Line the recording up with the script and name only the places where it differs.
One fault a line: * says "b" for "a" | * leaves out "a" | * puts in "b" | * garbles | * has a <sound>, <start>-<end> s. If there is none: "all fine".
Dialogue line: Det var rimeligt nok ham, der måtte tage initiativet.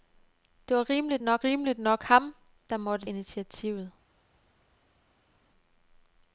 * puts in "rimeligt nok"
* leaves out "tage"